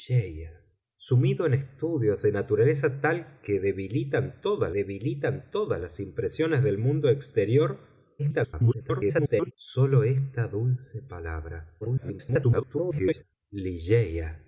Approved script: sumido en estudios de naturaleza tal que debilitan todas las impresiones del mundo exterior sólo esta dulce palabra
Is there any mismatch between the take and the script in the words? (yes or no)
yes